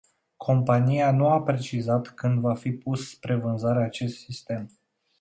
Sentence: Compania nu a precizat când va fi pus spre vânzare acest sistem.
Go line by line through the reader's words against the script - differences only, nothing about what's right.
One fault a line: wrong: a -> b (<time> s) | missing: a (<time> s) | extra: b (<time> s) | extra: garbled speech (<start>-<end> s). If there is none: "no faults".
no faults